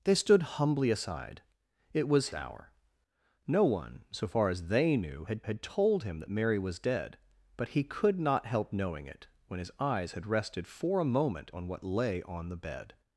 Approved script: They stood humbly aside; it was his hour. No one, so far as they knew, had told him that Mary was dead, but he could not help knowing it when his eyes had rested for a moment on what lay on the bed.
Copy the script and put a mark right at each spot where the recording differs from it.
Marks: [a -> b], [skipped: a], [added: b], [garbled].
They stood humbly aside; it was [skipped: his] hour. No one, so far as they knew, had [added: had] told him that Mary was dead, but he could not help knowing it when his eyes had rested for a moment on what lay on the bed.